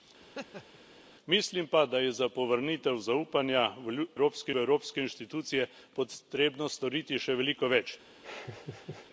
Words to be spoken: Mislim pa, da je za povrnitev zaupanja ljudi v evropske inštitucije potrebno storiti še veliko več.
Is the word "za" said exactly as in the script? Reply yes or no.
yes